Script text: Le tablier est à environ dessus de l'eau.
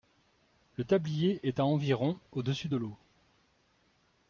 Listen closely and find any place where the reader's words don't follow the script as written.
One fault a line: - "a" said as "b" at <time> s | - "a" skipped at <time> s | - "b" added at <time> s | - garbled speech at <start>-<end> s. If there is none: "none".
- "au" added at 2.3 s